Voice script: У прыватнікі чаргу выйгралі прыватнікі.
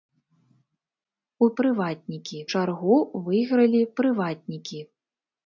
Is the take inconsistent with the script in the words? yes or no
no